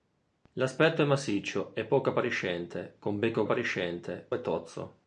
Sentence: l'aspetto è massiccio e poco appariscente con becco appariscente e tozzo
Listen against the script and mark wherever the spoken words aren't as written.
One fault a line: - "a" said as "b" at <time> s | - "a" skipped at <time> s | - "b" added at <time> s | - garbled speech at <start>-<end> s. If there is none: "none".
none